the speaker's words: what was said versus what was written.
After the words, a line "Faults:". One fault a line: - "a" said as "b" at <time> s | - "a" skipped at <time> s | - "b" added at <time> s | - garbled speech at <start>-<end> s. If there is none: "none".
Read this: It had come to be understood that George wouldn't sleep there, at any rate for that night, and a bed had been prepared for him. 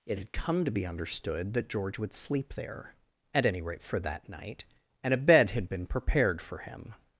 It had come to be understood that George would sleep there, at any rate for that night, and a bed had been prepared for him.
Faults:
- "wouldn't" said as "would" at 2.0 s